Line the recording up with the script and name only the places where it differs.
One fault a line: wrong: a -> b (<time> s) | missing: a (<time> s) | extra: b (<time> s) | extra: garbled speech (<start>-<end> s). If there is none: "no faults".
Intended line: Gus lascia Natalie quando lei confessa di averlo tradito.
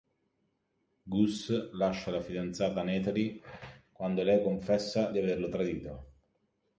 extra: la fidanzata (2.1 s)